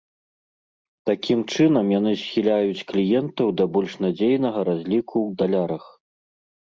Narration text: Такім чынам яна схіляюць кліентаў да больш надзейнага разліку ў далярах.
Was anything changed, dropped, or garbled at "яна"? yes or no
yes